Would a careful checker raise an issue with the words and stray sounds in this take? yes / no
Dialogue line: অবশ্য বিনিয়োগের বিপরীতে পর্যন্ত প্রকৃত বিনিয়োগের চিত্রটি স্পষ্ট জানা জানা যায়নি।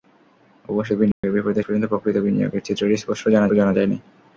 yes